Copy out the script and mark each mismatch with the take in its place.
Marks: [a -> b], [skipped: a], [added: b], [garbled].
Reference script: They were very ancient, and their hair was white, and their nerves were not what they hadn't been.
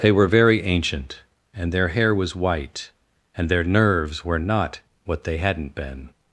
They were very ancient, and their hair was white, and their nerves were not what they hadn't been.